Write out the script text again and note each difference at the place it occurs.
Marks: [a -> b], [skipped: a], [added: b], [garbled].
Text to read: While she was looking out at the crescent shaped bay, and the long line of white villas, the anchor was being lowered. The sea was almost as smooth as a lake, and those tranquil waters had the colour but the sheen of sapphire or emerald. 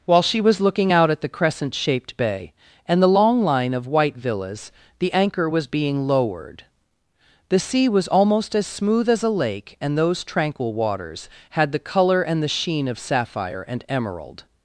While she was looking out at the crescent shaped bay, and the long line of white villas, the anchor was being lowered. The sea was almost as smooth as a lake, and those tranquil waters had the colour [but -> and] the sheen of sapphire [or -> and] emerald.